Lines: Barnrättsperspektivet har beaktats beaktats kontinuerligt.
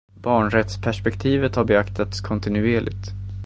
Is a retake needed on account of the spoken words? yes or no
yes